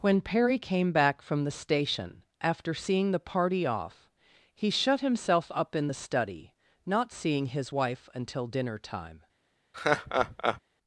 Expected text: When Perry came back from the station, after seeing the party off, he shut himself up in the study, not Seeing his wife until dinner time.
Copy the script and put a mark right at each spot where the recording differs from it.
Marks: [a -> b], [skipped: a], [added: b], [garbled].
When Perry came back from the station, after seeing the party off, he shut himself up in the study, not Seeing his wife until dinner time.